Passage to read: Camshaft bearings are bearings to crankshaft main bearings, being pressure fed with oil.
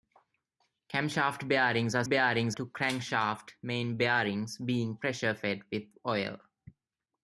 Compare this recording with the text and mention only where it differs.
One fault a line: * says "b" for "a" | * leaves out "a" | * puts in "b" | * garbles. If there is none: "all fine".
all fine